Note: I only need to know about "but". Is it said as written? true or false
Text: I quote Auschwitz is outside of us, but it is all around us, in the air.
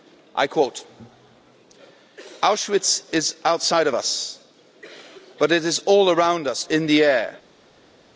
true